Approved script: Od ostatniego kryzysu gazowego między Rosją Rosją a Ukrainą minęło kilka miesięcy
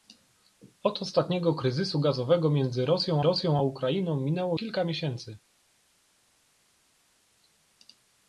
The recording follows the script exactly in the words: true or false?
true